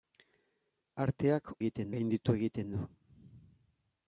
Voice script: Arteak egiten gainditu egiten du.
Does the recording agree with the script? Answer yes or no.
yes